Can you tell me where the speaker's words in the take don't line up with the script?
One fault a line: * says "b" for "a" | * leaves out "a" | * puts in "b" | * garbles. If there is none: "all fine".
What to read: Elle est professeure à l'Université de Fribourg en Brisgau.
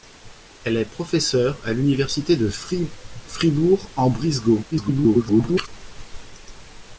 * garbles